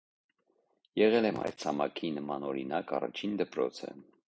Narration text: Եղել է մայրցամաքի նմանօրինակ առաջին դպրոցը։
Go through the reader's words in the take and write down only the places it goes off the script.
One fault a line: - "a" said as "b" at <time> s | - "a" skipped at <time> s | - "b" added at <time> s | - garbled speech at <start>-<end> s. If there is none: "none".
none